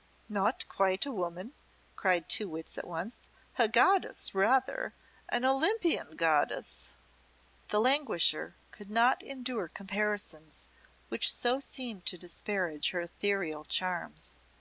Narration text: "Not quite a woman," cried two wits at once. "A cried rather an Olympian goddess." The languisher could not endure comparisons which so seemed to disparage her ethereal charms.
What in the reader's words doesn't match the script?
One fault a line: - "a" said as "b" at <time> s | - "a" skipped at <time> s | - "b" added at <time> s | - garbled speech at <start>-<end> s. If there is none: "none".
- "cried" said as "goddess" at 3.7 s